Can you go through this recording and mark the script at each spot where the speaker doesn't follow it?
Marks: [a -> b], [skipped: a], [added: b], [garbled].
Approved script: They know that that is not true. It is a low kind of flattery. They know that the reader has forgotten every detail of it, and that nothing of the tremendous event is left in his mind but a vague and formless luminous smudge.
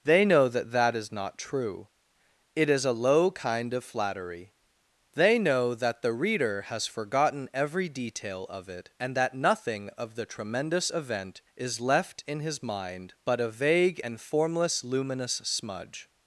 They know that that is not true. It is a low kind of flattery. They know that the reader has forgotten every detail of it, and that nothing of the tremendous event is left in his mind but a vague and formless luminous smudge.